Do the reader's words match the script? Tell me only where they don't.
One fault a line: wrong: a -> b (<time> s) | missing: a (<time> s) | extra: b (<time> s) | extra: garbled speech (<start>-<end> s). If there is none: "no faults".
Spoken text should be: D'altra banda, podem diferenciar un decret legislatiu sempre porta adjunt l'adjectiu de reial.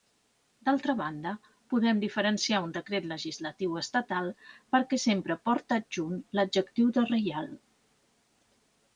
extra: estatal perquè (3.8 s)